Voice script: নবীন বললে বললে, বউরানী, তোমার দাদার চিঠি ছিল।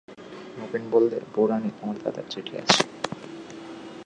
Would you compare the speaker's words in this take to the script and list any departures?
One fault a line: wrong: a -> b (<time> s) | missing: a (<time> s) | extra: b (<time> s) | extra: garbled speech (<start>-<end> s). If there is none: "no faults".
missing: বললে (1.2 s)
wrong: ছিল -> আছে (2.6 s)